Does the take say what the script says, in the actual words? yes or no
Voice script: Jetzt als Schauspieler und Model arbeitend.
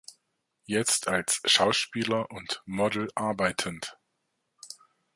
yes